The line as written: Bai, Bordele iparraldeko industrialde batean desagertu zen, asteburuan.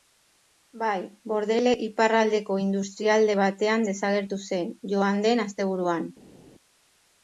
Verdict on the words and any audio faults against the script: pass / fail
fail